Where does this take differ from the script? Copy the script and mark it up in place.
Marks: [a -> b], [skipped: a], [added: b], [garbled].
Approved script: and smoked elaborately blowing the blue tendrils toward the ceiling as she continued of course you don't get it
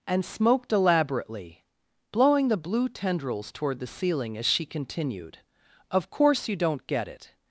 and smoked elaborately blowing the blue tendrils toward the ceiling as she continued of course you don't get it